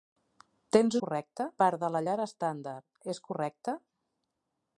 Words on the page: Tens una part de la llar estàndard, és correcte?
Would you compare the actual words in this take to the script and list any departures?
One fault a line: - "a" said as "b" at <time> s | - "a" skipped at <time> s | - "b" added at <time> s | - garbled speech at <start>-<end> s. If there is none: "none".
- "una" said as "correcte" at 1.0 s